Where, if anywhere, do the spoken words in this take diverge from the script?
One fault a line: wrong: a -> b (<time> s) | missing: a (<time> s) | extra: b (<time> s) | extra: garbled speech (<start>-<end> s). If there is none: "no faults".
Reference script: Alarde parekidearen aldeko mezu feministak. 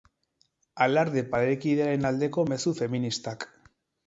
no faults